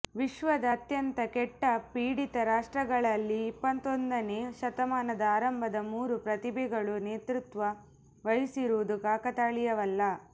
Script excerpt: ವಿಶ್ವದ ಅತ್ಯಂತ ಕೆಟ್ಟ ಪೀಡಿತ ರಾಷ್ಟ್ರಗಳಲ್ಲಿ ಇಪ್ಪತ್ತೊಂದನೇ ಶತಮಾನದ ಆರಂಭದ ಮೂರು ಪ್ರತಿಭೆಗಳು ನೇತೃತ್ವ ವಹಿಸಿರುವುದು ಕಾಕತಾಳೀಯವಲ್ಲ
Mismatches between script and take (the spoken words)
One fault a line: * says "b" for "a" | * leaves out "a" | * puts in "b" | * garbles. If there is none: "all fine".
all fine